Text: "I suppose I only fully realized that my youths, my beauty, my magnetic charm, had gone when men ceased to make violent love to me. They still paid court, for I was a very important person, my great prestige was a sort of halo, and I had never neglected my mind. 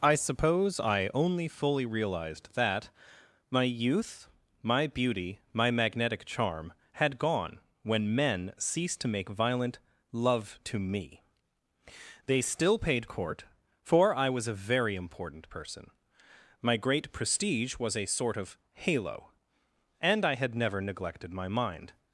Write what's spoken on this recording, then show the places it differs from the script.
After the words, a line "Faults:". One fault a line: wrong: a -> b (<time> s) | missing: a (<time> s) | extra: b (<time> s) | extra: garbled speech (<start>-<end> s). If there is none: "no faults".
"I suppose I only fully realized that my youth, my beauty, my magnetic charm, had gone when men ceased to make violent love to me. They still paid court, for I was a very important person, my great prestige was a sort of halo, and I had never neglected my mind.
Faults:
wrong: youths -> youth (3.6 s)